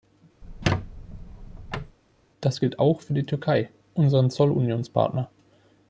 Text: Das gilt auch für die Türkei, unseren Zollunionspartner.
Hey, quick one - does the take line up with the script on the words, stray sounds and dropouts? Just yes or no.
no